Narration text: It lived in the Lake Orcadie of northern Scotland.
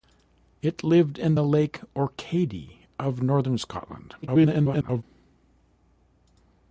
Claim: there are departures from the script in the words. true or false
true